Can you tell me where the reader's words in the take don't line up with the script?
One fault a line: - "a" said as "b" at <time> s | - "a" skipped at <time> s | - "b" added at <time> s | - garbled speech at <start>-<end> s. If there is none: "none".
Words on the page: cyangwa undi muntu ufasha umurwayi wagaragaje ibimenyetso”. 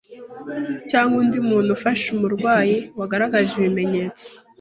none